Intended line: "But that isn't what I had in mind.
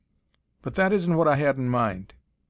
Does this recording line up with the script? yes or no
yes